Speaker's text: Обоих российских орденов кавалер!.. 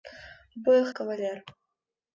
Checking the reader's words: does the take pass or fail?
fail